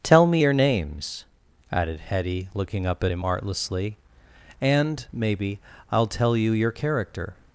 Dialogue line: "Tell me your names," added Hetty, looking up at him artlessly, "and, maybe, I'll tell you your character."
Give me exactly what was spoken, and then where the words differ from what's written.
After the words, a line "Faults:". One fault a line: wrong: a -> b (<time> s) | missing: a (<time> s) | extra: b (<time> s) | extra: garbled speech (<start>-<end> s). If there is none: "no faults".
"Tell me your names," added Hetty, looking up at him artlessly, "and, maybe, I'll tell you your character."
Faults:
no faults